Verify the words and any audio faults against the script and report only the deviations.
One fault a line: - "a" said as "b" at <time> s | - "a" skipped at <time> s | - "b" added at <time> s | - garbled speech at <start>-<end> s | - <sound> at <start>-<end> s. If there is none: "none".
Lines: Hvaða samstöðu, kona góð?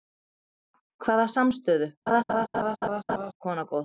- laugh at 2.1-3.3 s